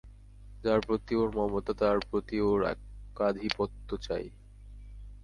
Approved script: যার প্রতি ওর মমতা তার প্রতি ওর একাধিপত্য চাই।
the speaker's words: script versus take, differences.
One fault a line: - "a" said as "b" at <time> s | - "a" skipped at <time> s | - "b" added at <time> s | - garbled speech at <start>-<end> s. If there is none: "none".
none